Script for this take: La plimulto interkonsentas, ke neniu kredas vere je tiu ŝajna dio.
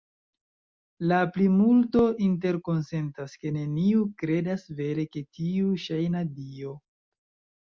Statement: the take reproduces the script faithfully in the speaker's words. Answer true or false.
true